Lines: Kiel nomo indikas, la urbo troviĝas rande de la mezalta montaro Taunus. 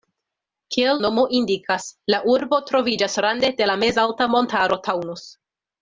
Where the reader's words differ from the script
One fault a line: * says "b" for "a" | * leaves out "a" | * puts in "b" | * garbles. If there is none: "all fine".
all fine